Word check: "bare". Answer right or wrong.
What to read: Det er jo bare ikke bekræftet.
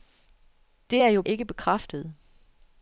wrong